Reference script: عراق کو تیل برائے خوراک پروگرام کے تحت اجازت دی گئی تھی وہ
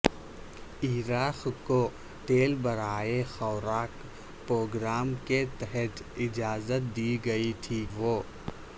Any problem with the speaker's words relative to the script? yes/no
no